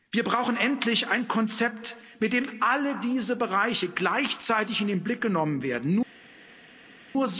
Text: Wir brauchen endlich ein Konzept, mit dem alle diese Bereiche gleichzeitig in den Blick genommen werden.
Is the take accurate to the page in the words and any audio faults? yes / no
yes